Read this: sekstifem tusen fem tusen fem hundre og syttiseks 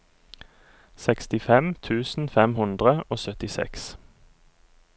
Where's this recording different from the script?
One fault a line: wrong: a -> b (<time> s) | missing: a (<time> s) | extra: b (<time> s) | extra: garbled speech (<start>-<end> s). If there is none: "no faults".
missing: tusen fem (2.5 s)